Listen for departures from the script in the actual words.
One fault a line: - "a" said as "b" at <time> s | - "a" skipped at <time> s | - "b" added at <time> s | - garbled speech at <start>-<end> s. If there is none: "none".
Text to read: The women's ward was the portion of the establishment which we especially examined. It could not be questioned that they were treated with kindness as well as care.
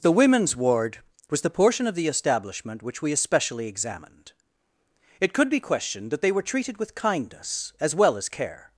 - "not" skipped at 5.5 s